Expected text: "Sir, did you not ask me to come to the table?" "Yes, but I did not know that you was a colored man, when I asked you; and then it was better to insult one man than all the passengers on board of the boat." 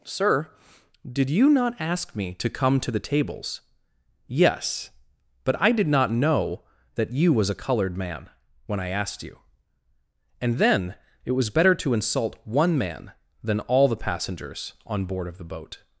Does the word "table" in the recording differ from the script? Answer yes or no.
yes